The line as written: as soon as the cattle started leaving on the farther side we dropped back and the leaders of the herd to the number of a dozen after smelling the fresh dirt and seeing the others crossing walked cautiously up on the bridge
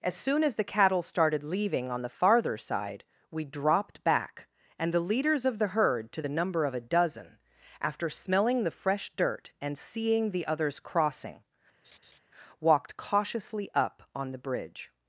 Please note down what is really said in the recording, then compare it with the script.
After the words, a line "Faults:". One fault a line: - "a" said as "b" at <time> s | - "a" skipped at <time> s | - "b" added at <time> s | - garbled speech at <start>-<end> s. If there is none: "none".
as soon as the cattle started leaving on the farther side we dropped back and the leaders of the herd to the number of a dozen after smelling the fresh dirt and seeing the others crossing walked cautiously up on the bridge
Faults:
none